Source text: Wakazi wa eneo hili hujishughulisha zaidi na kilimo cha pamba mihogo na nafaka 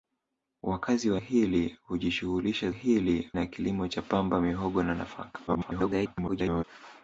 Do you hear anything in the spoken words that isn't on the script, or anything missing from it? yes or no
yes